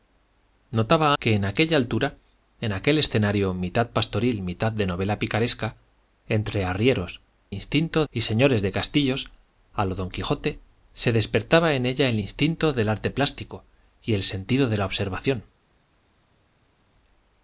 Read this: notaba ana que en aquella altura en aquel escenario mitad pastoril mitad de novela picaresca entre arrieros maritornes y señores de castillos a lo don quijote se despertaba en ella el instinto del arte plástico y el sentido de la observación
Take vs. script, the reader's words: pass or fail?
fail